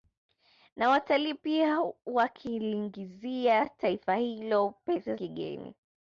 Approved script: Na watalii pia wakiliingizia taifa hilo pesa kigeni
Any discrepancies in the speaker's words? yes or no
no